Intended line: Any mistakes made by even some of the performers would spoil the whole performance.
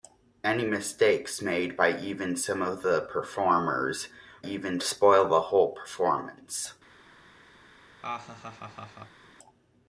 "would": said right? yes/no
no